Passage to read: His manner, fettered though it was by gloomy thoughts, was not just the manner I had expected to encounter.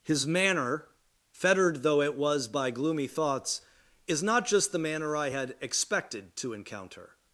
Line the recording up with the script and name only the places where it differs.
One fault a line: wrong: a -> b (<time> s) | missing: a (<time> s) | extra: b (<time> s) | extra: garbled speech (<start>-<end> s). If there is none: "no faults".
wrong: was -> is (4.1 s)